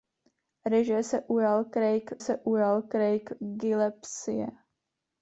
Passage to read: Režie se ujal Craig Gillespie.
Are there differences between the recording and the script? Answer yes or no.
yes